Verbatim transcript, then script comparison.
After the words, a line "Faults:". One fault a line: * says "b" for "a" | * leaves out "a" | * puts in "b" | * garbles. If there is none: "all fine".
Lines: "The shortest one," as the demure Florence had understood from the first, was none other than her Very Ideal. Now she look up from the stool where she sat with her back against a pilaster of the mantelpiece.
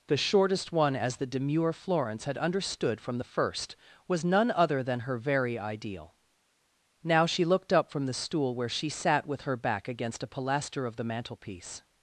"The shortest one," as the demure Florence had understood from the first, was none other than her Very Ideal. Now she looked up from the stool where she sat with her back against a pilaster of the mantelpiece.
Faults:
* says "looked" for "look"